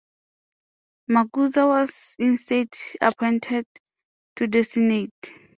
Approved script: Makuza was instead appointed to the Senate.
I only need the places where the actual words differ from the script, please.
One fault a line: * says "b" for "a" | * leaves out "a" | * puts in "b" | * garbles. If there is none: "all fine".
all fine